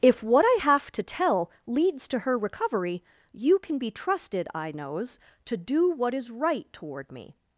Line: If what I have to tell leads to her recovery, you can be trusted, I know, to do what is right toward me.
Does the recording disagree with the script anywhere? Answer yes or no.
yes